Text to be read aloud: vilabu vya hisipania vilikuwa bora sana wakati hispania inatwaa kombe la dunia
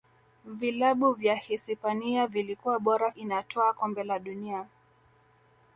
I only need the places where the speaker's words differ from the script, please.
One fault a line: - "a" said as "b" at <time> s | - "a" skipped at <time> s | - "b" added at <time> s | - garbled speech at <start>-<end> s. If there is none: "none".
- "sana wakati hispania" skipped at 3.1 s